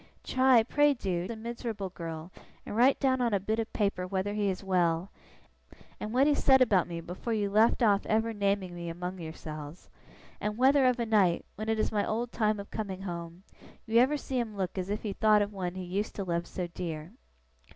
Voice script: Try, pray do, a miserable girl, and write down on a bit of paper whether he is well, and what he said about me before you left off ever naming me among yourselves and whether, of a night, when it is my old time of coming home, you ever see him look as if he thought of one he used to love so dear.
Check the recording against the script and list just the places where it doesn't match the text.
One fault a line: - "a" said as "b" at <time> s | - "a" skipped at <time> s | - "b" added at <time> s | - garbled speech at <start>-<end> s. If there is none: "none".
none